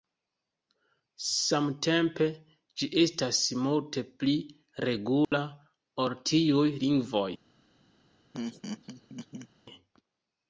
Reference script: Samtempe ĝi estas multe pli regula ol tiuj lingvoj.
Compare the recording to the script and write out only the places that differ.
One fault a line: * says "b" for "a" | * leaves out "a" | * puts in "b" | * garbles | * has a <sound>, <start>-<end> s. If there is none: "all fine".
* has a dropout, 5.2-5.3 s
* has a laugh, 8.3-9.5 s